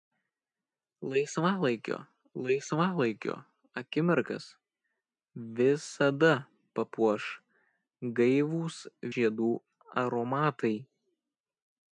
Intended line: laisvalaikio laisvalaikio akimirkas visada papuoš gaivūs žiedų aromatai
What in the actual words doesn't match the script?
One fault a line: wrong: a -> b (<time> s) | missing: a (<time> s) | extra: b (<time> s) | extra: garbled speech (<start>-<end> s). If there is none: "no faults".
no faults